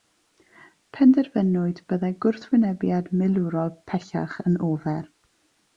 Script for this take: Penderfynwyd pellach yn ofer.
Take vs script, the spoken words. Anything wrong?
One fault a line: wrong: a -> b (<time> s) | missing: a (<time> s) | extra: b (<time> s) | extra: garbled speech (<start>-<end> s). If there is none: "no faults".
extra: byddai gwrthwynebiad milwrol (1.9 s)